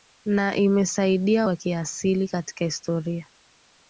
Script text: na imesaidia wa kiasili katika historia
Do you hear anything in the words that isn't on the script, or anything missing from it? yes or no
no